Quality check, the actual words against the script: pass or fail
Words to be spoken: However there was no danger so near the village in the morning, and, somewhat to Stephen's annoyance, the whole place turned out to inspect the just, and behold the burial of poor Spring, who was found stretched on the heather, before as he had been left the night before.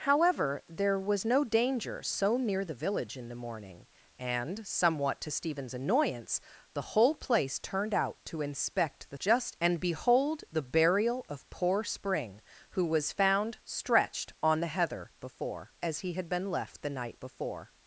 pass